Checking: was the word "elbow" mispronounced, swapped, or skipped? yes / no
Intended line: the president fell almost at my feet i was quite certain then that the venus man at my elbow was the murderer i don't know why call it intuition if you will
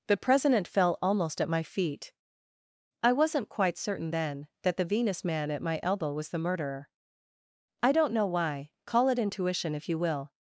no